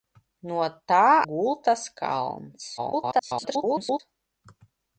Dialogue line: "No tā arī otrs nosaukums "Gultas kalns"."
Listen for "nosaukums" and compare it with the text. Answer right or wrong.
wrong